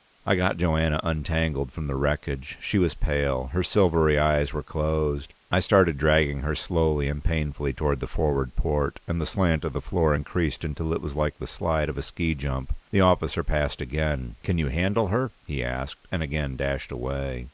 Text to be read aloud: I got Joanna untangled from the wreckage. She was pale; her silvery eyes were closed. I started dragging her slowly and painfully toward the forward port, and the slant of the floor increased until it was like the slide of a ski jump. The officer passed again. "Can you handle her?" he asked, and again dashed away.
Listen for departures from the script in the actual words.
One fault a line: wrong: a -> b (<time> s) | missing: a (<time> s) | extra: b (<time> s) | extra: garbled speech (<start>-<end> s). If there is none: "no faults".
no faults